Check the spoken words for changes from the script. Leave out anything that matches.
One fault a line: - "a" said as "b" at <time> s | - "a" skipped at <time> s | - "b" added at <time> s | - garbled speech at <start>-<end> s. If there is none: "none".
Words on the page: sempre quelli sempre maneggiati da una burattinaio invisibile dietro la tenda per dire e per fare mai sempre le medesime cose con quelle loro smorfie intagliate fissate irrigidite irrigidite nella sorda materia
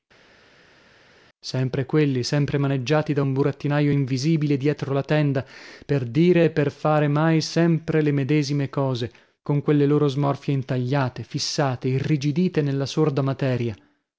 - "una" said as "un" at 3.2 s
- "irrigidite" skipped at 12.6 s